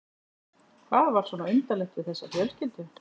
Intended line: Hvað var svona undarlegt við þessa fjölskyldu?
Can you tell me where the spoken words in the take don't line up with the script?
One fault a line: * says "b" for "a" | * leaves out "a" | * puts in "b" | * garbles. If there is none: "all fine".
all fine